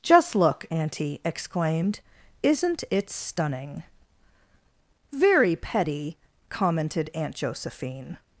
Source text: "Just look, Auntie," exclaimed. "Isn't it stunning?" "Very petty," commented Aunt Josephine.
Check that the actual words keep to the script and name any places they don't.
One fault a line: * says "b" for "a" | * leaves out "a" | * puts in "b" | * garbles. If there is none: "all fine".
all fine